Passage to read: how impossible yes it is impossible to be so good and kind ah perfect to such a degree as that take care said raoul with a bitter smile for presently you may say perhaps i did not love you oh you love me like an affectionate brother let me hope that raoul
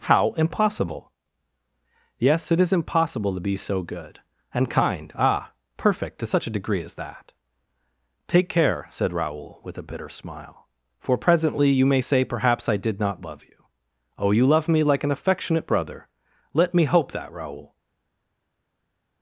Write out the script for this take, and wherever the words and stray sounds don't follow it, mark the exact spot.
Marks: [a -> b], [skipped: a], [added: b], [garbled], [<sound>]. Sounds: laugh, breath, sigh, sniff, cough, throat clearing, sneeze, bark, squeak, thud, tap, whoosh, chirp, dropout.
how impossible yes it is impossible to be so good and kind ah perfect to such a degree as that take care said raoul with a bitter smile for presently you may say perhaps i did not love you oh you love me like an affectionate brother let me hope that raoul